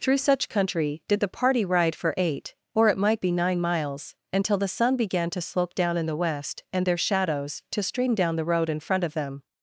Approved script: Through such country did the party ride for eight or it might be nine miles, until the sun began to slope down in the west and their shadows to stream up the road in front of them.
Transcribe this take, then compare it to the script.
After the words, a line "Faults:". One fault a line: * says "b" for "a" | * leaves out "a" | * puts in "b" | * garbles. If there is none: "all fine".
Through such country did the party ride for eight or it might be nine miles, until the sun began to slope down in the west and their shadows to stream down the road in front of them.
Faults:
* says "down" for "up"